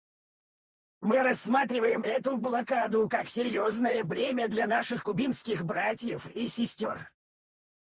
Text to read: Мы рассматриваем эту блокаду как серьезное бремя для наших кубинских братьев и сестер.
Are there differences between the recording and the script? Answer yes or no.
no